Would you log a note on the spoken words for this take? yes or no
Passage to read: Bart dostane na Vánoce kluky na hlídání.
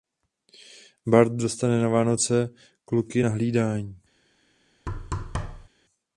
no